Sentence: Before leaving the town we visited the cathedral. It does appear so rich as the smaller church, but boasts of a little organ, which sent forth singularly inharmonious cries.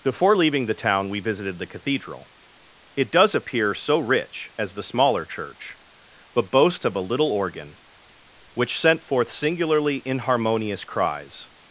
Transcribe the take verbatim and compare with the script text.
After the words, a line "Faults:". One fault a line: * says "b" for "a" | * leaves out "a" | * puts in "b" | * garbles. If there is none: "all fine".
Before leaving the town we visited the cathedral. It does appear so rich as the smaller church, but boasts of a little organ, which sent forth singularly inharmonious cries.
Faults:
all fine